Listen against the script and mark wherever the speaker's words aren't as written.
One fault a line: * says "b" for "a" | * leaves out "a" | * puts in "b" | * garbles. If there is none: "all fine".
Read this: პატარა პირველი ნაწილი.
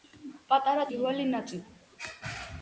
all fine